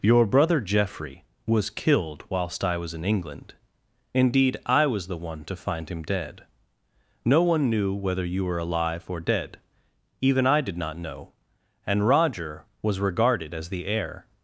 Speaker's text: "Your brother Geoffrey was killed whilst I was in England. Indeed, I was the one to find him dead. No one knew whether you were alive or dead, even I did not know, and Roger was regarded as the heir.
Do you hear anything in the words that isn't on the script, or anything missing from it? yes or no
no